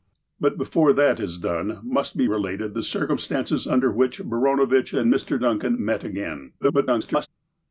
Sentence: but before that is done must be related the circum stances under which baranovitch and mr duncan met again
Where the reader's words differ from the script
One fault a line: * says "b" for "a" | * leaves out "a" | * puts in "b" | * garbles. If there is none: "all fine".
* garbles